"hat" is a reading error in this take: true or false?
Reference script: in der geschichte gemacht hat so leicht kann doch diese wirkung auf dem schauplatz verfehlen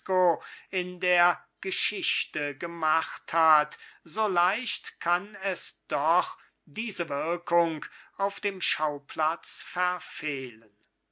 false